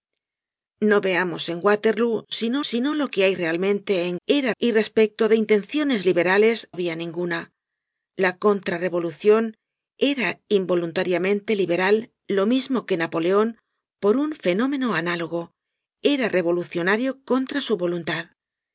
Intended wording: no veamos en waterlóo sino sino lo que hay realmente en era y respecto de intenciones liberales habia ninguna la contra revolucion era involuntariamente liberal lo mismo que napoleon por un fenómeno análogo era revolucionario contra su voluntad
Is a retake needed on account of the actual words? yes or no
no